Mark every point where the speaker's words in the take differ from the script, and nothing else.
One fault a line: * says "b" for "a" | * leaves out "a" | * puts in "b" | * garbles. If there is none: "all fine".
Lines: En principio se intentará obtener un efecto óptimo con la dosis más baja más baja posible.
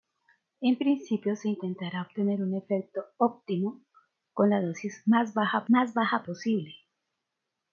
all fine